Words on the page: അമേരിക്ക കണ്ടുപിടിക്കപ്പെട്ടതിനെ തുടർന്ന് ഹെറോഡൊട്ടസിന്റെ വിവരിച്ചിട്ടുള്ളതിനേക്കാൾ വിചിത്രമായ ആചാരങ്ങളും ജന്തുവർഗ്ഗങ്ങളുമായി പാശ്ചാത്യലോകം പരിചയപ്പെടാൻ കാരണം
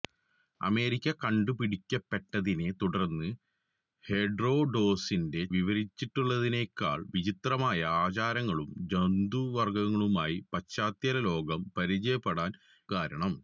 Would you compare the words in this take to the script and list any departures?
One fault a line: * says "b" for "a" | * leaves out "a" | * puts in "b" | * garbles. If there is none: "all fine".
all fine